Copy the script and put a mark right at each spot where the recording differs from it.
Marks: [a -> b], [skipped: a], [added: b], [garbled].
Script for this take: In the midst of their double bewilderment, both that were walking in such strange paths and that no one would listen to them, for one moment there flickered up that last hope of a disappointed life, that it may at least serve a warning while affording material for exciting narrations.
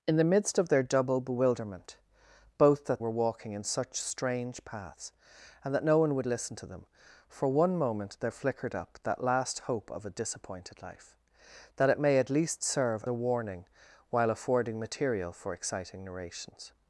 In the midst of their double bewilderment, both that were walking in such strange paths and that no one would listen to them, for one moment there flickered up that last hope of a disappointed life, that it may at least serve a warning while affording material for exciting narrations.